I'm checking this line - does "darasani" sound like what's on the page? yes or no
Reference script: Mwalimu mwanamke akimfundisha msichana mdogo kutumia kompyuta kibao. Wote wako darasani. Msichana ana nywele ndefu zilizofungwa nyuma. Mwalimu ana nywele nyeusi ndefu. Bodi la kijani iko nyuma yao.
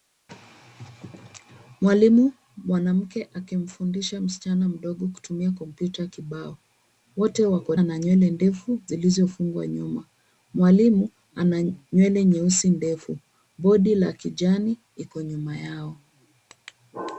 no